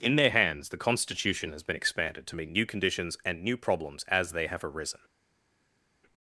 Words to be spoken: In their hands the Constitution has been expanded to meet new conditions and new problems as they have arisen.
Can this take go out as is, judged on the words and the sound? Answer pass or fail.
pass